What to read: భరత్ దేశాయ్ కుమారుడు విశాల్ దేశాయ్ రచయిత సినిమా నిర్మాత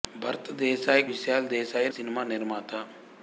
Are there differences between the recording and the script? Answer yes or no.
yes